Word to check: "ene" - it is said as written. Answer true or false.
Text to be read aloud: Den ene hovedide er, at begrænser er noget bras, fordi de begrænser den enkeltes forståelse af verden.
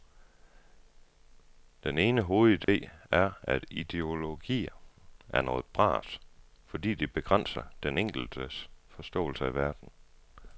true